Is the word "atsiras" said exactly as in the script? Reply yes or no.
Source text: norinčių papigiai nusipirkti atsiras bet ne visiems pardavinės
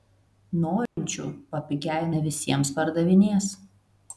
no